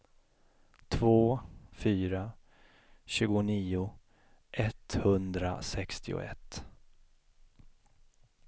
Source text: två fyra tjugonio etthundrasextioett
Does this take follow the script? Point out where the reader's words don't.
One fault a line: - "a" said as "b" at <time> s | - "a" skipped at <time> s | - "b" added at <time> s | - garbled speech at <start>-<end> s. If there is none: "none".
none